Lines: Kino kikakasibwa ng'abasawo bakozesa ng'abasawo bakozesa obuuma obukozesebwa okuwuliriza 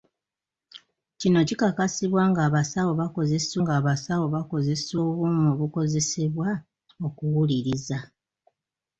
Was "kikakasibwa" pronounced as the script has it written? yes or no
yes